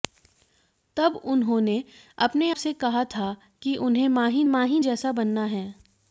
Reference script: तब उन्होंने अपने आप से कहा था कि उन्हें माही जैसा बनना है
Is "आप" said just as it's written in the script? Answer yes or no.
no